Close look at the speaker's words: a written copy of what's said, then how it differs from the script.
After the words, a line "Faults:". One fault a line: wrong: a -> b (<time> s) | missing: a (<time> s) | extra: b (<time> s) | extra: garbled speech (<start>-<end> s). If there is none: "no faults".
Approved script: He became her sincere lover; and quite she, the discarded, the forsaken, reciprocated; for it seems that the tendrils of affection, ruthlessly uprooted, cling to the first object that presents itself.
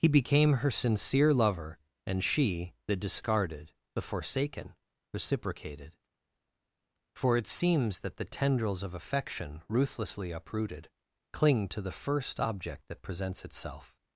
He became her sincere lover; and she, the discarded, the forsaken, reciprocated; for it seems that the tendrils of affection, ruthlessly uprooted, cling to the first object that presents itself.
Faults:
missing: quite (2.2 s)